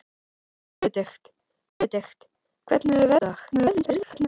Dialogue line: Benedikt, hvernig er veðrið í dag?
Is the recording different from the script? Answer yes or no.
yes